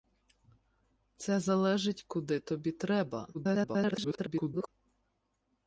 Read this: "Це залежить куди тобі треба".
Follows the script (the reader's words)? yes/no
no